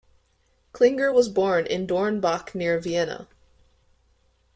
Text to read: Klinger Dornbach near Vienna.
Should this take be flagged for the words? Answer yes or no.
yes